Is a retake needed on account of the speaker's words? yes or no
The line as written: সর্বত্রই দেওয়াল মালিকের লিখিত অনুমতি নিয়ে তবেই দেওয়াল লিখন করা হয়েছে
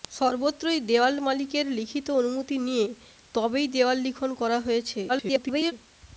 yes